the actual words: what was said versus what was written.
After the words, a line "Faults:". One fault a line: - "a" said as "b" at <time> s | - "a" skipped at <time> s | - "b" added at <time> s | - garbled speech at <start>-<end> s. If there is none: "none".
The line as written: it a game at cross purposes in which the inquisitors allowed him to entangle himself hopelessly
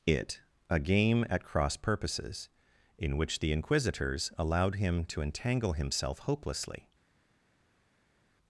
it a game at cross purposes in which the inquisitors allowed him to entangle himself hopelessly
Faults:
none